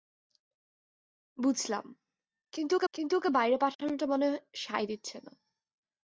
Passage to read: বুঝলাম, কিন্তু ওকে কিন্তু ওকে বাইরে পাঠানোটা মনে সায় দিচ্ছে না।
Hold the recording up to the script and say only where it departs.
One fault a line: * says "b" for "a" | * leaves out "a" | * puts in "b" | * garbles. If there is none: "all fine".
all fine